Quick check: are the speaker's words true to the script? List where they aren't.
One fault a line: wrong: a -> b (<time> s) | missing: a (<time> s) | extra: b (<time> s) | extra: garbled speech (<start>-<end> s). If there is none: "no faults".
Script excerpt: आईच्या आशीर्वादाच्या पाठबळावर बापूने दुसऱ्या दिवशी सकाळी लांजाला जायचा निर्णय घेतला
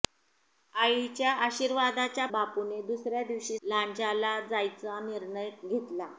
missing: पाठबळावर (2.2 s)
missing: सकाळी (3.6 s)